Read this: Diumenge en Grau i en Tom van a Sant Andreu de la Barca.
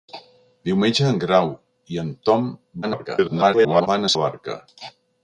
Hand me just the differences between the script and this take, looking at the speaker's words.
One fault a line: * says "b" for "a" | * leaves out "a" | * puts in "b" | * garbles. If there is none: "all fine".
* garbles
* leaves out "Sant Andreu de"